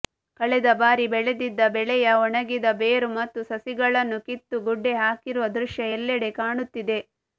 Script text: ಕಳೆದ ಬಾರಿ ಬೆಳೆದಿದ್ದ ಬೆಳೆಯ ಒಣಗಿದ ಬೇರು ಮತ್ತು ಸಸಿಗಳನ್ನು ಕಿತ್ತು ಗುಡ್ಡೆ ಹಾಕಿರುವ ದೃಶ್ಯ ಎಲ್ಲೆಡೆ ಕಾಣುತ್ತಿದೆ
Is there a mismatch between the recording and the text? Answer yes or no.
no